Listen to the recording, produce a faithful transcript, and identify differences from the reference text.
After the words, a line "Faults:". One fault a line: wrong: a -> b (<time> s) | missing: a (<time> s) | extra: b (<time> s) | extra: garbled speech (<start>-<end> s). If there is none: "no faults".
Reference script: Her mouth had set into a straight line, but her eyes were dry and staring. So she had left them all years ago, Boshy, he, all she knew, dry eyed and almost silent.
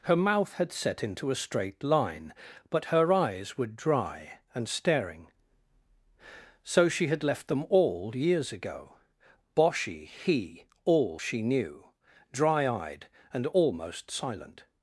Her mouth had set into a straight line, but her eyes were dry and staring. So she had left them all years ago, Boshy, he, all she knew, dry eyed and almost silent.
Faults:
no faults